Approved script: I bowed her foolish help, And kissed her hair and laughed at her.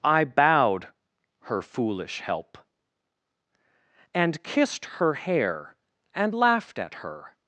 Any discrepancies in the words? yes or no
no